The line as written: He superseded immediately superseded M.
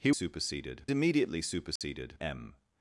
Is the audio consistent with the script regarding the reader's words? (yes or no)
yes